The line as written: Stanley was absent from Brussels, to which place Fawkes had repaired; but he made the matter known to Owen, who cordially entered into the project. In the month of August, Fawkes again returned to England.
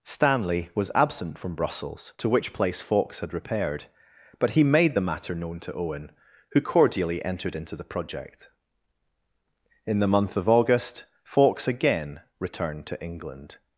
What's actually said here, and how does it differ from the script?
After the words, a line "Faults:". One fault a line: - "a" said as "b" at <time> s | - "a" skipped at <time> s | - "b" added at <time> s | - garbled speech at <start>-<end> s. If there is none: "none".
Stanley was absent from Brussels, to which place Fawkes had repaired; but he made the matter known to Owen, who cordially entered into the project. In the month of August, Fawkes again returned to England.
Faults:
none